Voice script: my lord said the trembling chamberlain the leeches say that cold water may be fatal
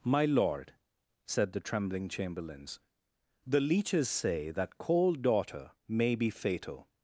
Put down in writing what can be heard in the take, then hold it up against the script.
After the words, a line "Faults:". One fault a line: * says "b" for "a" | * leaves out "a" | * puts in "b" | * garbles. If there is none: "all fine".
my lord said the trembling chamberlains the leeches say that cold daughter may be fatal
Faults:
* says "chamberlains" for "chamberlain"
* says "daughter" for "water"